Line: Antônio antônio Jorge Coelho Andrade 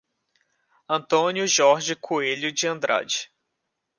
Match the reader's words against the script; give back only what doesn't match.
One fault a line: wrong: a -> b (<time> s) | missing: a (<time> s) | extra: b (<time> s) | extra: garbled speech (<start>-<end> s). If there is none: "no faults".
missing: antônio (1.4 s)
extra: de (2.5 s)